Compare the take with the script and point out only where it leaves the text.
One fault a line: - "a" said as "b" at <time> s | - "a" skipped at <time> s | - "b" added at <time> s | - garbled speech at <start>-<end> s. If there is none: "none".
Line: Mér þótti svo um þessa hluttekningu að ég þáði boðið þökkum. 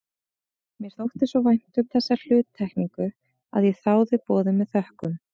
- "vænt" added at 1.5 s
- "með" added at 4.6 s